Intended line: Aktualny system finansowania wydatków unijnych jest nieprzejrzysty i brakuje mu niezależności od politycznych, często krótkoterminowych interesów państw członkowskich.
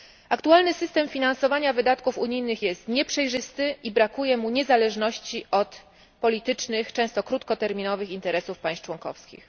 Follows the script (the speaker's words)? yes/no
yes